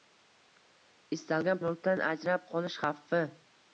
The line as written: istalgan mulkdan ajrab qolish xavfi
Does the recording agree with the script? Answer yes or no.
yes